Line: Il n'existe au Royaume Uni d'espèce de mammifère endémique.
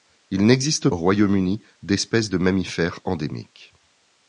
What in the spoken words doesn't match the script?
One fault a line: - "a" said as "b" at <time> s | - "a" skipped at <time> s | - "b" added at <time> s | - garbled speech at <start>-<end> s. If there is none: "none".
none